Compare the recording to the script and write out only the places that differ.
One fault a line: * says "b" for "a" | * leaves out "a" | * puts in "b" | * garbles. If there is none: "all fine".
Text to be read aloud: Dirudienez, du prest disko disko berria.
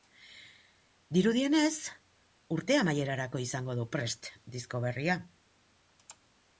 * puts in "urte amaierarako izango"
* leaves out "disko"